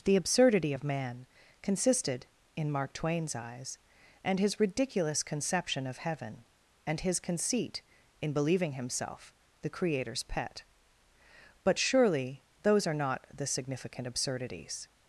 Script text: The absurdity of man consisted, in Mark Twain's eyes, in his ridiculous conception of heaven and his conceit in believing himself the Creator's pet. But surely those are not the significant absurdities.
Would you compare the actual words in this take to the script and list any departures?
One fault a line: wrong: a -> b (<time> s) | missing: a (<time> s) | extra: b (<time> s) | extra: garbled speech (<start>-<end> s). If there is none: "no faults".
wrong: in -> and (4.2 s)